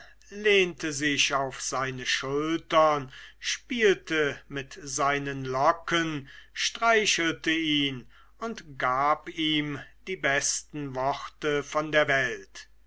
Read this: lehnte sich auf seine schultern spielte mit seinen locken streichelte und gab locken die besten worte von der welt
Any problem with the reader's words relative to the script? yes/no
yes